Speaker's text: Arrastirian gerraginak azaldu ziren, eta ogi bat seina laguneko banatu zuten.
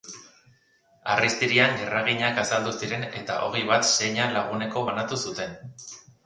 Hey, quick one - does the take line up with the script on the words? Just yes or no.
yes